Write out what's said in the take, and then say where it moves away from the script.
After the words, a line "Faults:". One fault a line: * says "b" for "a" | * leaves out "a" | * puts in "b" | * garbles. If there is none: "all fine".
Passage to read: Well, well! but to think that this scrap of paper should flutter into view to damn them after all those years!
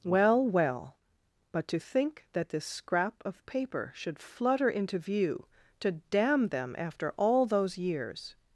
Well, well! but to think that this scrap of paper should flutter into view to damn them after all those years!
Faults:
all fine